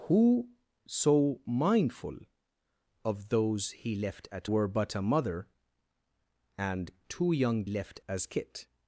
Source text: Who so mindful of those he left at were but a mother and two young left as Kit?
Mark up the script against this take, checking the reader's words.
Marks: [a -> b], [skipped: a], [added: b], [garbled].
Who so mindful of those he left at were but a mother and two young left as Kit?